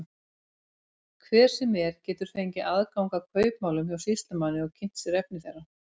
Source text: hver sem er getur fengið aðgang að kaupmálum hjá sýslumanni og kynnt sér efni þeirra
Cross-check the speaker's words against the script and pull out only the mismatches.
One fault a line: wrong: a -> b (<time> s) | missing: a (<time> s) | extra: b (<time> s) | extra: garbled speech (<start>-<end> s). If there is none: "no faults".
no faults